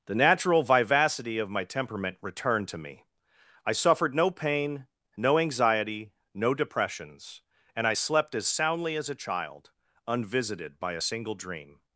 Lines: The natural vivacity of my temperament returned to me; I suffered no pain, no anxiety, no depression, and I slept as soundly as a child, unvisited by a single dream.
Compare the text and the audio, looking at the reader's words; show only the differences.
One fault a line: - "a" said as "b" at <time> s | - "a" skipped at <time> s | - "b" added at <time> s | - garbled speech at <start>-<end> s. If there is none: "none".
- "depression" said as "depressions" at 6.5 s